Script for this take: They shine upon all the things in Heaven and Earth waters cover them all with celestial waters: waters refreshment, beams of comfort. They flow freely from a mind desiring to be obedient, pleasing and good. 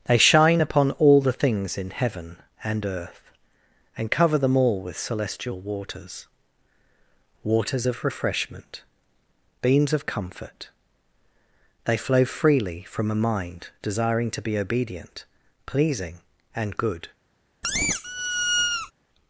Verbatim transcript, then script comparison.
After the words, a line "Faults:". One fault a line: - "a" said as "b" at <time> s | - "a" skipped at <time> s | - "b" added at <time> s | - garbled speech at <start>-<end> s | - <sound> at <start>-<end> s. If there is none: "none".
They shine upon all the things in Heaven and Earth and cover them all with celestial waters: waters of refreshment, beams of comfort. They flow freely from a mind desiring to be obedient, pleasing and good.
Faults:
- "waters" said as "and" at 4.0 s
- "of" added at 7.9 s
- squeak at 17.6-18.9 s